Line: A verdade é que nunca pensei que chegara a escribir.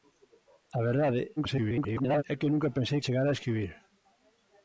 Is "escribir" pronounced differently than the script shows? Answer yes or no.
no